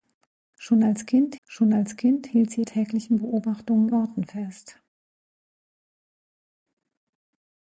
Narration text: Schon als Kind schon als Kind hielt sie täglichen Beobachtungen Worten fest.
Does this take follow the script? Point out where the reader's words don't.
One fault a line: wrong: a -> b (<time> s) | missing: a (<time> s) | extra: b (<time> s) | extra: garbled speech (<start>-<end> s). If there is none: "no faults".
no faults